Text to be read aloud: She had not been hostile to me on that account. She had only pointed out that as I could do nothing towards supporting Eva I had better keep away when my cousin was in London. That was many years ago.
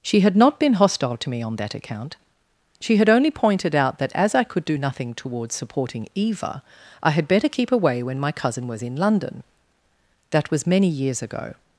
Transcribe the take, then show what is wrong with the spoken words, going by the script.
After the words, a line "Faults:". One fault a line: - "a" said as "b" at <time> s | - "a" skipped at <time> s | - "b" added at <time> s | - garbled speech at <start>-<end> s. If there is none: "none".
She had not been hostile to me on that account. She had only pointed out that as I could do nothing towards supporting Eva I had better keep away when my cousin was in London. That was many years ago.
Faults:
none